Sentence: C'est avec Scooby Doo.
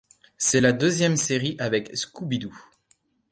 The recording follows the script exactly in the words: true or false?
false